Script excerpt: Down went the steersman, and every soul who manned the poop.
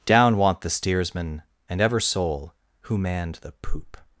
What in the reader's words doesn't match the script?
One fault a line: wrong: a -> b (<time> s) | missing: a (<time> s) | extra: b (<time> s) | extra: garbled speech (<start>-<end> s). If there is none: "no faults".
wrong: went -> want (0.4 s)
wrong: every -> ever (1.8 s)